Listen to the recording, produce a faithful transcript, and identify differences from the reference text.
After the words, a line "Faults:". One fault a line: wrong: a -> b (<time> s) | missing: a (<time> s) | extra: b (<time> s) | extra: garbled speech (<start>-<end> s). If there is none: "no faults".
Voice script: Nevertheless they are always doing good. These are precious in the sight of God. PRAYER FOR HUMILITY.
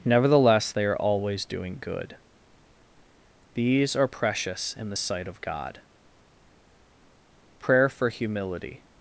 Nevertheless they are always doing good. These are precious in the sight of God. PRAYER FOR HUMILITY.
Faults:
no faults